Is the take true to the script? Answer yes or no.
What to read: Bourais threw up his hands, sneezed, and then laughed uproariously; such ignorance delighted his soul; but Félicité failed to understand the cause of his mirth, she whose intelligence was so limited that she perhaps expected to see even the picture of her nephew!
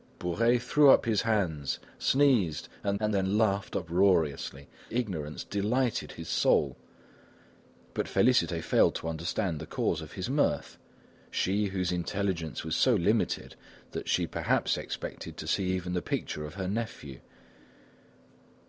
no